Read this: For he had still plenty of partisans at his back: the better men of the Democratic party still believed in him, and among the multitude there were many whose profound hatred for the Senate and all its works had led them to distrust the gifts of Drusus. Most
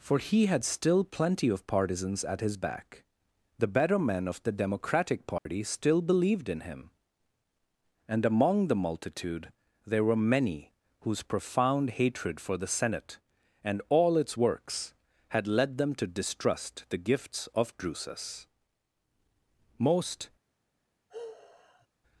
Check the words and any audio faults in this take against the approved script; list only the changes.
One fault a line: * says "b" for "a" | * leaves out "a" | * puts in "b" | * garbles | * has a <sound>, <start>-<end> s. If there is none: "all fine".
* has a dropout, 5.4-5.5 s
* has a sigh, 21.1-21.9 s